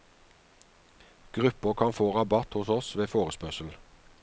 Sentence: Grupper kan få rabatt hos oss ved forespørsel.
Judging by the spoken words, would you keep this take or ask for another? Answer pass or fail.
pass